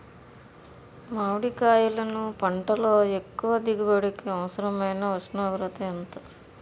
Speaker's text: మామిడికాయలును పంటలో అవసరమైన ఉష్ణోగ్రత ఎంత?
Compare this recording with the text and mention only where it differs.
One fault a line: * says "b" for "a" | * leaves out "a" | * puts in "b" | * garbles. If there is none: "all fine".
* puts in "ఎక్కువ దిగుబడికి"